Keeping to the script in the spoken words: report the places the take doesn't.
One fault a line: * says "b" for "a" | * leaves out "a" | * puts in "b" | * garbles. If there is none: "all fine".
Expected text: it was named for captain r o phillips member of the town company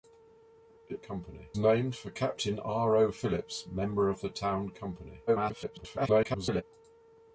* says "company" for "was"
* garbles